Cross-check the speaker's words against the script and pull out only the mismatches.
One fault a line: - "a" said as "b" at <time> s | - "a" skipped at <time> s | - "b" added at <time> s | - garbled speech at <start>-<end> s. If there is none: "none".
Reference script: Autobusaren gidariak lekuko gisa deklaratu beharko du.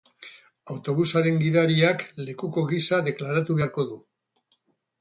none